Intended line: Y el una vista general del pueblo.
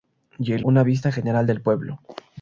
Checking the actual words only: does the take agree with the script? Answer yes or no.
yes